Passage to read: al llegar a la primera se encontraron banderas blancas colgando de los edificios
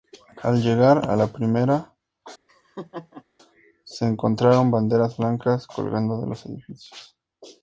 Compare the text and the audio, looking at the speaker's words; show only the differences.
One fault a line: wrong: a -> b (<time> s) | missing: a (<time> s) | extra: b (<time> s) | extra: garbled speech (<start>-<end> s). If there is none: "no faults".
no faults